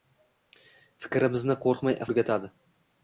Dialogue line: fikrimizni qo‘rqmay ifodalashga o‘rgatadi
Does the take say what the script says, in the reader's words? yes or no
no